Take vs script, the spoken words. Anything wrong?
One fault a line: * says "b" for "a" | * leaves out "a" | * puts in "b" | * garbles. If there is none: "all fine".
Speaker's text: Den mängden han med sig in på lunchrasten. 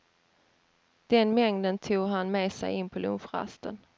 * puts in "tog"